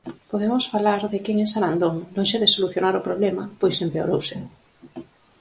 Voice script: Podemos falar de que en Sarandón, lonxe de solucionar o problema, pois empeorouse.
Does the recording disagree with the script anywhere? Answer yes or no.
no